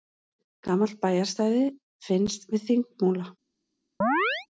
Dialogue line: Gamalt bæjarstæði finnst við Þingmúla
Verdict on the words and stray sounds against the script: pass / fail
fail